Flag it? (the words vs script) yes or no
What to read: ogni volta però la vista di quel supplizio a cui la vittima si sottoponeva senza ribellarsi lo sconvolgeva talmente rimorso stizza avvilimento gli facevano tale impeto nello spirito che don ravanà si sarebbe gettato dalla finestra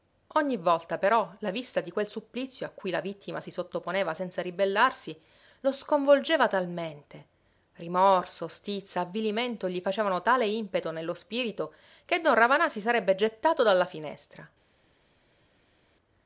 no